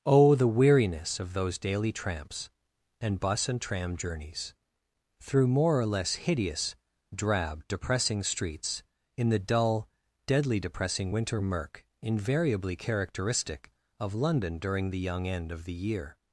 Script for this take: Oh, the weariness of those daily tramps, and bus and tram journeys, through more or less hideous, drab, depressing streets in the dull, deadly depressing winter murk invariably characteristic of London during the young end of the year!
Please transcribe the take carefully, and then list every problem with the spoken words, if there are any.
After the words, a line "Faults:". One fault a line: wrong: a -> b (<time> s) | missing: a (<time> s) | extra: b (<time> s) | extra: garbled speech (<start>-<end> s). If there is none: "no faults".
Oh, the weariness of those daily tramps, and bus and tram journeys, through more or less hideous, drab, depressing streets in the dull, deadly depressing winter murk invariably characteristic of London during the young end of the year!
Faults:
no faults